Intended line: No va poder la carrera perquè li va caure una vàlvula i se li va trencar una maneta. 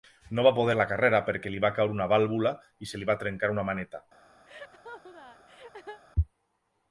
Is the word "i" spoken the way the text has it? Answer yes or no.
yes